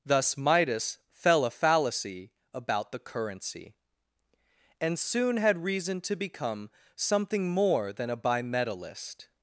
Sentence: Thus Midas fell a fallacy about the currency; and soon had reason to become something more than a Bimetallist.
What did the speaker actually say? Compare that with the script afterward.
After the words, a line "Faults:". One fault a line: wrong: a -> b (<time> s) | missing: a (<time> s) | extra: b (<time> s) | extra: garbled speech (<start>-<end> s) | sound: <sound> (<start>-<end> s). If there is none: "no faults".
Thus Midas fell a fallacy about the currency; and soon had reason to become something more than a Bimetallist.
Faults:
no faults